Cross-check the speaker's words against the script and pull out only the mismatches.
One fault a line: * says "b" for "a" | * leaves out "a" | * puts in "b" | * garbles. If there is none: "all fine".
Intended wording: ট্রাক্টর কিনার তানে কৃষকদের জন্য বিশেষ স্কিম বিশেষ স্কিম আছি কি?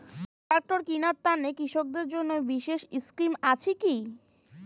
* leaves out "বিশেষ স্কিম"